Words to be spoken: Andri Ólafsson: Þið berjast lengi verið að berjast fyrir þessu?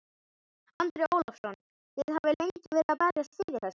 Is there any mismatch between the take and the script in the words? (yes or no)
yes